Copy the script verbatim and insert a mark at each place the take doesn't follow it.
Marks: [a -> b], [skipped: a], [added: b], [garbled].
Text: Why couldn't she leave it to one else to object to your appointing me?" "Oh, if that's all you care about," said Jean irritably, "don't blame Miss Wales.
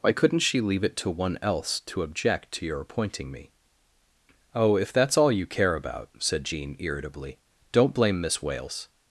Why couldn't she leave it to one else to object to your appointing me?" "Oh, if that's all you care about," said Jean irritably, "don't blame Miss Wales.